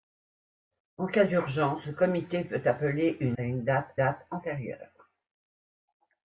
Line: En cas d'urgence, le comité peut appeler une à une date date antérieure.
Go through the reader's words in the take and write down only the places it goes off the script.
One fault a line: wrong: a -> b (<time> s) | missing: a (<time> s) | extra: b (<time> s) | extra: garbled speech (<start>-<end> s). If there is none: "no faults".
no faults